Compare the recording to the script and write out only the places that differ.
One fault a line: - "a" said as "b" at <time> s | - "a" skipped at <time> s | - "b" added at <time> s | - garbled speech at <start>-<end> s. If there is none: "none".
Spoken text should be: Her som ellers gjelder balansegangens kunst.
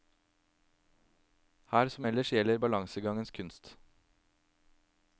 none